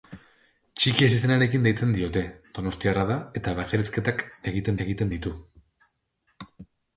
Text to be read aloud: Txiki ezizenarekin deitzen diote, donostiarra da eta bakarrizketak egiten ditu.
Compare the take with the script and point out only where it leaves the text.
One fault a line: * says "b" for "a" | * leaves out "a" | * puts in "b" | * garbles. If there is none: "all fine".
* puts in "egiten"